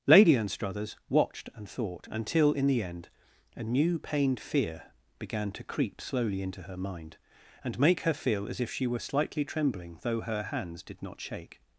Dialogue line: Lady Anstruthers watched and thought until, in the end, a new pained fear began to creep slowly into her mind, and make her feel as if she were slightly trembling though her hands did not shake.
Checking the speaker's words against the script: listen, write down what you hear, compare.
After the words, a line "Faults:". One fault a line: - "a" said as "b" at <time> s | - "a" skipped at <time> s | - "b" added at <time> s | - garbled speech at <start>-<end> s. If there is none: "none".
Lady Anstruthers watched and thought until, in the end, a new pained fear began to creep slowly into her mind, and make her feel as if she were slightly trembling though her hands did not shake.
Faults:
none